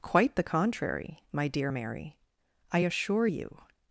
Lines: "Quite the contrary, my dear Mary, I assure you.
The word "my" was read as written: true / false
true